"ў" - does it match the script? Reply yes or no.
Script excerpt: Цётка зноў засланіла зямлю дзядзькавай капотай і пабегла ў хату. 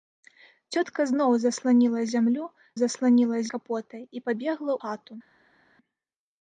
no